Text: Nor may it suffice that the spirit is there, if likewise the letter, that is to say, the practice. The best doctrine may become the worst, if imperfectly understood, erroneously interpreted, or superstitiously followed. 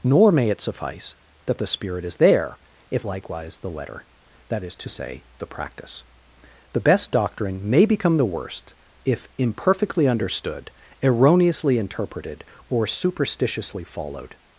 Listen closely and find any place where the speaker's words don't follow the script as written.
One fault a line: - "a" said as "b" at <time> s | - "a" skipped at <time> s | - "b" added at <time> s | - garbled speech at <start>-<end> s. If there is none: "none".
none